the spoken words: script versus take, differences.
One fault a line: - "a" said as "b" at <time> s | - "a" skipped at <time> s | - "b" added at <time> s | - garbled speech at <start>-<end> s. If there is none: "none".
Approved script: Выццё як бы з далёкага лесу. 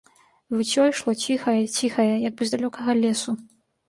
- "ішло ціхае ціхае" added at 0.9 s